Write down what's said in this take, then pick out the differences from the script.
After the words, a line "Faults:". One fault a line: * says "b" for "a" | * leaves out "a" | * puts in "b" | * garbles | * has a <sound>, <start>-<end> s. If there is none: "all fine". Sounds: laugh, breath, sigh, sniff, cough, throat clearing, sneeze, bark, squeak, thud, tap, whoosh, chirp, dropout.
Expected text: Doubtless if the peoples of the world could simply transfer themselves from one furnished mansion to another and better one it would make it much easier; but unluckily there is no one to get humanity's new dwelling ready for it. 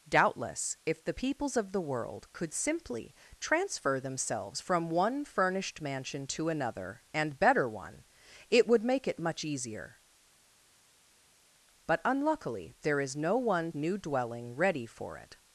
Doubtless if the peoples of the world could simply transfer themselves from one furnished mansion to another and better one it would make it much easier; but unluckily there is no one new dwelling ready for it.
Faults:
* leaves out "to get humanity's"